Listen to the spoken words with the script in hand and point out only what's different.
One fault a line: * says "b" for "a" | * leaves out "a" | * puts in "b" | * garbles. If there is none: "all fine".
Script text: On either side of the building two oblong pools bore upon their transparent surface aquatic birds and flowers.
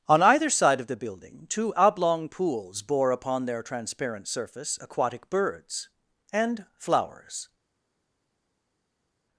all fine